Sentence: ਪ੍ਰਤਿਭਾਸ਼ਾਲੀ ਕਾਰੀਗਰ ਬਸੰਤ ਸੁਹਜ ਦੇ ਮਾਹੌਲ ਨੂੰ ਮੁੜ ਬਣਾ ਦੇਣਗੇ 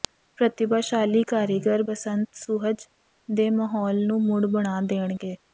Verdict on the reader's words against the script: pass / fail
pass